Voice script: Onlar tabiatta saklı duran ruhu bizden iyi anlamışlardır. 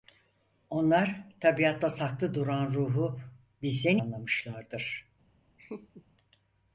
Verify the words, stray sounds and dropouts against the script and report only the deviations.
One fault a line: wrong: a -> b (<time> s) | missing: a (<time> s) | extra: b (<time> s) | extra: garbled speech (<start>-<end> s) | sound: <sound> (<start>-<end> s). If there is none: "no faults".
missing: iyi (4.0 s)
sound: laugh (5.6-6.0 s)